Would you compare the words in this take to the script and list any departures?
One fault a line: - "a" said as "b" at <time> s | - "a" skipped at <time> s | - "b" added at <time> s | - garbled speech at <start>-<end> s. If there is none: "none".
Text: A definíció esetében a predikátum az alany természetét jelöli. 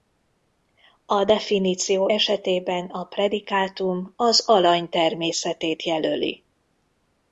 none